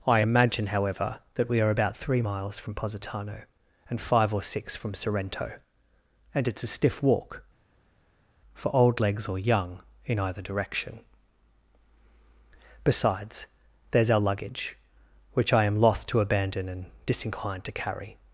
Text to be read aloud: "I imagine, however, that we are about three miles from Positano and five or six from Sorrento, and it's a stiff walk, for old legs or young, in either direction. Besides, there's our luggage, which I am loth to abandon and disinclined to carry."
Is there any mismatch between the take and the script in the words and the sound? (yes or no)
no